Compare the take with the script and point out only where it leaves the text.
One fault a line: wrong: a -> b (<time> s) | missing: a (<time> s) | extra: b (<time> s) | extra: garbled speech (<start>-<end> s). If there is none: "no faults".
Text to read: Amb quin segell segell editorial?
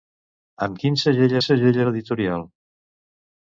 no faults